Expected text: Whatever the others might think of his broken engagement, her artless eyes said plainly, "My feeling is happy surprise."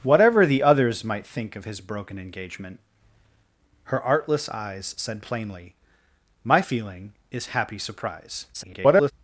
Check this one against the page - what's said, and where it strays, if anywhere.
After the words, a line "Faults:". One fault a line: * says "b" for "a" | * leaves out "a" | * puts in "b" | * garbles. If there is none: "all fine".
Whatever the others might think of his broken engagement, her artless eyes said plainly, "My feeling is happy surprise." [garbled]
Faults:
* garbles